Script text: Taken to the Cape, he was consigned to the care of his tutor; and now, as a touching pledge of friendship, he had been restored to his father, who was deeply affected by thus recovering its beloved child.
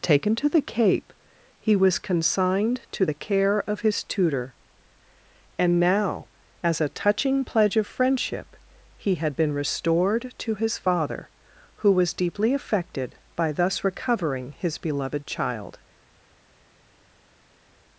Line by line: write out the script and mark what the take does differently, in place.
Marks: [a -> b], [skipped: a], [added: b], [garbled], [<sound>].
Taken to the Cape, he was consigned to the care of his tutor; and now, as a touching pledge of friendship, he had been restored to his father, who was deeply affected by thus recovering [its -> his] beloved child.